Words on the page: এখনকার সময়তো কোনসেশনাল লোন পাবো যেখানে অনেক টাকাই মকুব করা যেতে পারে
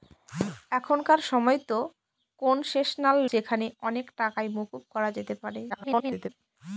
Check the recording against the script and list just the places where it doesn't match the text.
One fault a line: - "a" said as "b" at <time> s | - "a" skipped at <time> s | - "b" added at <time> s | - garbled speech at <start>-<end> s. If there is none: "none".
- "লোন পাবো" skipped at 3.2 s
- garbled speech at 5.7-6.3 s